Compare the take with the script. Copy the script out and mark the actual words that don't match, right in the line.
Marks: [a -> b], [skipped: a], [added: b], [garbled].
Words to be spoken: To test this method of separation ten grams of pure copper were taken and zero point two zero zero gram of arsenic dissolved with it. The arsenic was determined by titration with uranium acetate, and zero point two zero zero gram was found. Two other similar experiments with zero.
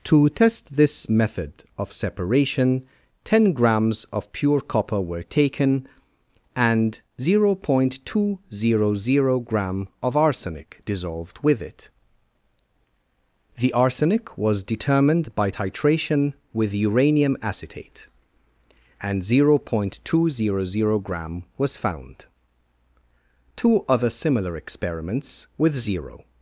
To test this method of separation ten grams of pure copper were taken and zero point two zero zero gram of arsenic dissolved with it. The arsenic was determined by titration with uranium acetate, and zero point two zero zero gram was found. Two other similar experiments with zero.